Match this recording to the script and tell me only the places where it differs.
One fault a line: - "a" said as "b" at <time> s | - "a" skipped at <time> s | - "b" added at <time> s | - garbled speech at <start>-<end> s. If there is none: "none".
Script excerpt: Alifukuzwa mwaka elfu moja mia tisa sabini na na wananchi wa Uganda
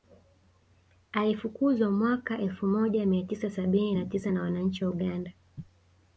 - "tisa" added at 4.1 s